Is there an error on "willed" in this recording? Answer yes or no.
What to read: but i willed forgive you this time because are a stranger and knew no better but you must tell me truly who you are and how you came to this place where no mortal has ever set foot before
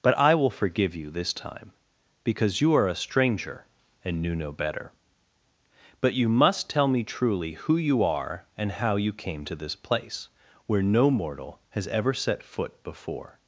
yes